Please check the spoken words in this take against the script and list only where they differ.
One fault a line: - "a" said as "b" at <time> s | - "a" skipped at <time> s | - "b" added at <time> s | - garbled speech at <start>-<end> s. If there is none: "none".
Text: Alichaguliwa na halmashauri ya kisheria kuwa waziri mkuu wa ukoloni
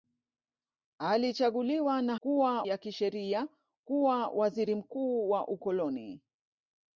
- "halmashauri" said as "kuwa" at 2.2 s